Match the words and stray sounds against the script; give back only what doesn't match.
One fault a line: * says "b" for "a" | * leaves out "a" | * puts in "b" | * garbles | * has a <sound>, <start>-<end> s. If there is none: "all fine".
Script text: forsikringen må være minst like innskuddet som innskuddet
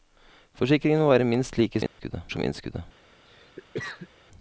* has a dropout, 1.9-2.0 s
* has a cough, 3.3-4.1 s